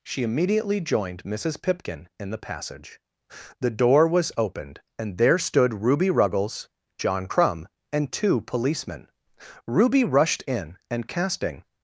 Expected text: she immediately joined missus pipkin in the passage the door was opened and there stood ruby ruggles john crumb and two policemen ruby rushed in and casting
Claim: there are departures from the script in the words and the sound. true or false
false